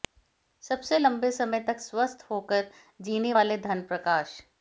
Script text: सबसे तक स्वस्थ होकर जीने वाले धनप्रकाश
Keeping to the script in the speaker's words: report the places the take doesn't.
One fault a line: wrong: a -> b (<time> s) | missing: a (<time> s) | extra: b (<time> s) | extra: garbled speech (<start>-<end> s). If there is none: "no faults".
extra: लंबे समय (1.0 s)